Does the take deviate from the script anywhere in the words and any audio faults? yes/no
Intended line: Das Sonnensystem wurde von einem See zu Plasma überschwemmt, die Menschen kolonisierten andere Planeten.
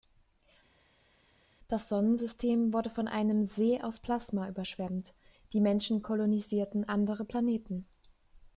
yes